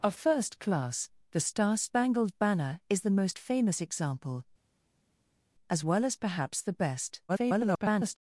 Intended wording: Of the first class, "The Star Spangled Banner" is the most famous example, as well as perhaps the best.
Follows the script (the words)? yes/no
no